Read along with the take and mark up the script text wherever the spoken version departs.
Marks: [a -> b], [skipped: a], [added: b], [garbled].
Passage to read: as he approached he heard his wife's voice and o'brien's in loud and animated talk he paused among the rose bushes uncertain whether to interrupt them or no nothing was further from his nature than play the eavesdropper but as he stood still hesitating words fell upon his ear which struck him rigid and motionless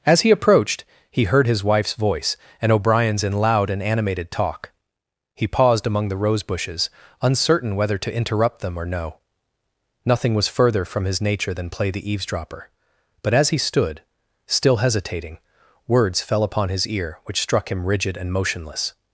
as he approached he heard his wife's voice and o'brien's in loud and animated talk he paused among the rose bushes uncertain whether to interrupt them or no nothing was further from his nature than play the eavesdropper but as he stood still hesitating words fell upon his ear which struck him rigid and motionless